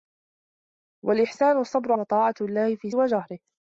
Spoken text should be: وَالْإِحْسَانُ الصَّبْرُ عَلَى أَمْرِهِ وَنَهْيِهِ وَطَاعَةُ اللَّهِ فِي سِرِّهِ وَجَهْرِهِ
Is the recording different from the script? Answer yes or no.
yes